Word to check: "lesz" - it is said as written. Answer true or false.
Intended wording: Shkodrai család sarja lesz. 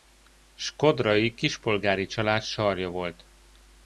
false